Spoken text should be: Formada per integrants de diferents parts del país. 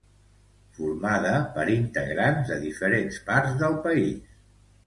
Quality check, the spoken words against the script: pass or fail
pass